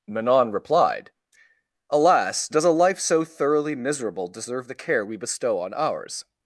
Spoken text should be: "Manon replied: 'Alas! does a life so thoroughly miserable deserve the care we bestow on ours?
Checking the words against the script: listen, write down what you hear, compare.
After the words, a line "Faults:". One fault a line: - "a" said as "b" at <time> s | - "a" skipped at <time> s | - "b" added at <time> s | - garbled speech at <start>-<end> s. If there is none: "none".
"Manon replied: 'Alas! does a life so thoroughly miserable deserve the care we bestow on ours?
Faults:
none